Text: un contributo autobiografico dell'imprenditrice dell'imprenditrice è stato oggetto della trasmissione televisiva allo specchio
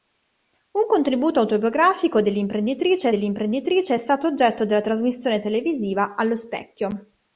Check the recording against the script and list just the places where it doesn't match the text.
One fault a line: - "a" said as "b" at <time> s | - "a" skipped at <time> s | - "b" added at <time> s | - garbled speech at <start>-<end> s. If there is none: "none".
none